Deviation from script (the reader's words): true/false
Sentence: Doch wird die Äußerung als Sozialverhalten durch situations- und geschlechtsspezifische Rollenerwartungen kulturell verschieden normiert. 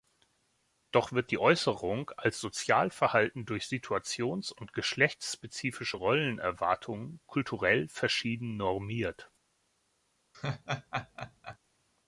false